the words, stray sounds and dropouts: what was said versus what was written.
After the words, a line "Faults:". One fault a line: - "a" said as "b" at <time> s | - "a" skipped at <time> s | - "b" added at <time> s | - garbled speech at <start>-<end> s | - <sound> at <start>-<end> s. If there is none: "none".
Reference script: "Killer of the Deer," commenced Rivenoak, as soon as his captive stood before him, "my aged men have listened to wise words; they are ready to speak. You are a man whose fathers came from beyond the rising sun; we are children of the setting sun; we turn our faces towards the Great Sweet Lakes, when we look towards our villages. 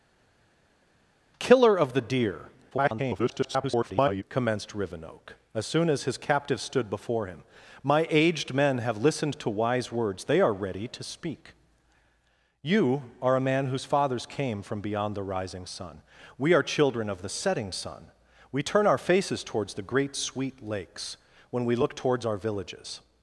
"Killer of the Deer," [garbled] commenced Rivenoak, as soon as his captive stood before him, "my aged men have listened to wise words; they are ready to speak. You are a man whose fathers came from beyond the rising sun; we are children of the setting sun; we turn our faces towards the Great Sweet Lakes, when we look towards our villages.
Faults:
- garbled speech at 2.7-4.2 s